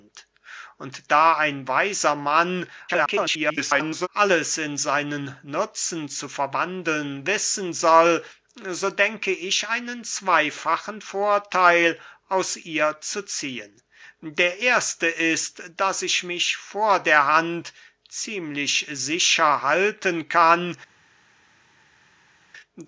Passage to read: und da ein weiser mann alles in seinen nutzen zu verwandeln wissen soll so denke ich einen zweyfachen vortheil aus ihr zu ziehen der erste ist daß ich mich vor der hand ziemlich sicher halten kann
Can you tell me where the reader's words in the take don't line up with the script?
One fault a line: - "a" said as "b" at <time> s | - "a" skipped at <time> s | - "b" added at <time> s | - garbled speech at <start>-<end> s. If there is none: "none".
- garbled speech at 2.9-4.1 s